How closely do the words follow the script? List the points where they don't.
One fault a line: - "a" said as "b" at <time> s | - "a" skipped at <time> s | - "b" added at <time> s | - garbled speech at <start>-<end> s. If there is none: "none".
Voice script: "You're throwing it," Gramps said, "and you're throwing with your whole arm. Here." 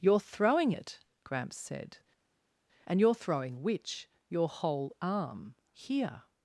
- "with" said as "which" at 3.6 s